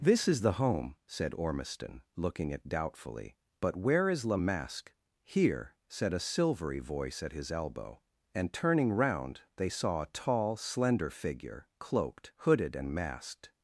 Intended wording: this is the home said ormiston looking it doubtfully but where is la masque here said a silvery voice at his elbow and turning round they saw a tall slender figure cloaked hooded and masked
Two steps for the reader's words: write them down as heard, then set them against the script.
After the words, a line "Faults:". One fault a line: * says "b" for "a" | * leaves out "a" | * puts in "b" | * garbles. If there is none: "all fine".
this is the home said ormiston looking it doubtfully but where is la masque here said a silvery voice at his elbow and turning round they saw a tall slender figure cloaked hooded and masked
Faults:
all fine